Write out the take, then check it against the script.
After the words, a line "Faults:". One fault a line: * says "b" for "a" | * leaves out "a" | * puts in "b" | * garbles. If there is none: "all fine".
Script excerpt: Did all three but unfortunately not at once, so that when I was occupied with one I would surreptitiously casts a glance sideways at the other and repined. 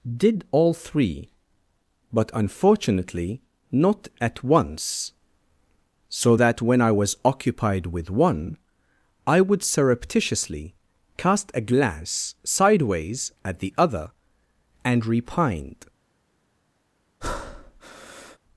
Did all three but unfortunately not at once, so that when I was occupied with one I would surreptitiously cast a glance sideways at the other and repined.
Faults:
* says "cast" for "casts"